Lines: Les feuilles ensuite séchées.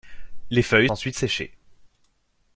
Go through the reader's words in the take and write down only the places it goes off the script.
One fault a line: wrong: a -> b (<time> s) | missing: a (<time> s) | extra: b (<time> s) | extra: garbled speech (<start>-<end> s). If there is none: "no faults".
no faults